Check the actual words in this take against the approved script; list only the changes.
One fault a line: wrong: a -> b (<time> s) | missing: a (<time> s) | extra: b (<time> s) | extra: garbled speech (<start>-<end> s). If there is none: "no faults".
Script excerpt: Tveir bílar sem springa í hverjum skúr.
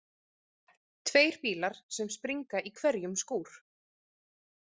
no faults